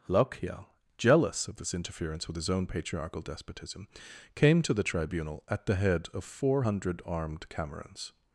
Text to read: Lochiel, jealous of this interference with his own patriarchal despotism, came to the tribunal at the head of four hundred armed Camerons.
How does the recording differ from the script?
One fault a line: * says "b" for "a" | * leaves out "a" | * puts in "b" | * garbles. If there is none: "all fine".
all fine